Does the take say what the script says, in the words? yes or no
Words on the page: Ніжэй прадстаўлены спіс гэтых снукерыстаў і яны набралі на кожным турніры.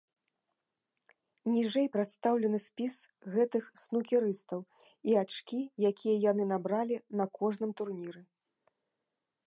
no